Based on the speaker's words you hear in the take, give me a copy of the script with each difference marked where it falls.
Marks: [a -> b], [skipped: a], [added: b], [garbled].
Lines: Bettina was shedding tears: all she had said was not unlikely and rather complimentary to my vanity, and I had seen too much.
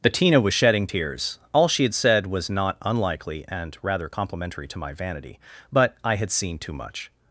Bettina was shedding tears: all she had said was not unlikely and rather complimentary to my vanity, [and -> but] I had seen too much.